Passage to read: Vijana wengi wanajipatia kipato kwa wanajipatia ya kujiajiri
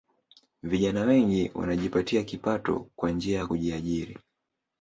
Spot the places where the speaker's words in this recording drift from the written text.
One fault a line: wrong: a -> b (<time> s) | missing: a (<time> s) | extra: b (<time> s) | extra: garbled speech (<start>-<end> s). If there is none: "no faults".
wrong: wanajipatia -> njia (3.1 s)